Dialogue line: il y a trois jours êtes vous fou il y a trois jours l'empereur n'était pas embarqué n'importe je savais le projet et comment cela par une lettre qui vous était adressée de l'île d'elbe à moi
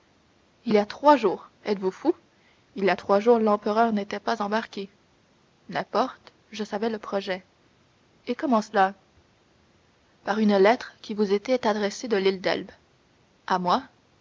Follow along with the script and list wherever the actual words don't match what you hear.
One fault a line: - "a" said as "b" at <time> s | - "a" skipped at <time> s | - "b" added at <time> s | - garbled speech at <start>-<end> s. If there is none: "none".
none